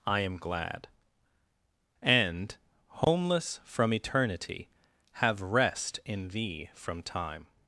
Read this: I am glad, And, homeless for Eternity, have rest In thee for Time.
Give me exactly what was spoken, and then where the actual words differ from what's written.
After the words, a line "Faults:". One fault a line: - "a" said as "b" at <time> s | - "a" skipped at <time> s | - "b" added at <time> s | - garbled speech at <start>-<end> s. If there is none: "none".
I am glad, And, homeless from Eternity, have rest In thee from Time.
Faults:
- "for" said as "from" at 3.6 s
- "for" said as "from" at 6.7 s